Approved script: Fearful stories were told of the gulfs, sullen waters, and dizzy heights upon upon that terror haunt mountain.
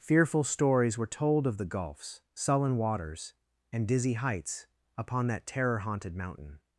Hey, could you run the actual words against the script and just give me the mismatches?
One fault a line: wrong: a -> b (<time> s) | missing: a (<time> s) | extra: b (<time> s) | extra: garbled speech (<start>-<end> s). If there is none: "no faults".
missing: upon (5.3 s)
wrong: haunt -> haunted (5.8 s)